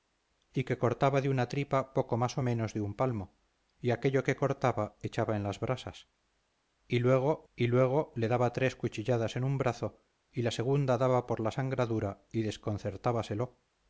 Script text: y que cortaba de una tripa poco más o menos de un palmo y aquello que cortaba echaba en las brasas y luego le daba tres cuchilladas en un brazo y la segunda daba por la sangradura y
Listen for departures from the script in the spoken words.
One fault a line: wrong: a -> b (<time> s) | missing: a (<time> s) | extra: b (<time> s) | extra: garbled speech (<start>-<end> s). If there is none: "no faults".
extra: y luego (7.5 s)